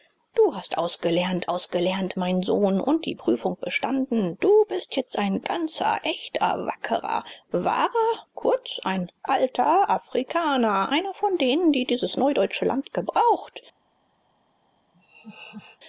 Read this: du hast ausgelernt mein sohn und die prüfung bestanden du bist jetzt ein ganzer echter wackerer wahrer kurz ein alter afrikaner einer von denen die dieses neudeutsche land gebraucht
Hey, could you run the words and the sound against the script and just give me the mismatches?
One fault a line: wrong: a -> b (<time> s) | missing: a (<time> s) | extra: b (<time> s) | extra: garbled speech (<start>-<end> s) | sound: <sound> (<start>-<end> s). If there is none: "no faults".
extra: ausgelernt (1.5 s)
sound: laugh (14.9-15.8 s)